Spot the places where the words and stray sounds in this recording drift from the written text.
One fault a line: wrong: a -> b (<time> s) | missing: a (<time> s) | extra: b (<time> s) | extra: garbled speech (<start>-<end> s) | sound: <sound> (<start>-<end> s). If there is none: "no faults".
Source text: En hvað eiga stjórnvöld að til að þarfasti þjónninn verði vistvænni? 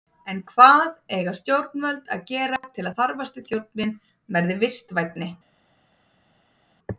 extra: gera (2.3 s)